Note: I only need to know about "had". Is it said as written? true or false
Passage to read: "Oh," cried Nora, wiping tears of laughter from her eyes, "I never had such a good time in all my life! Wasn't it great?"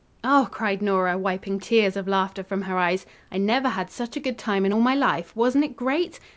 true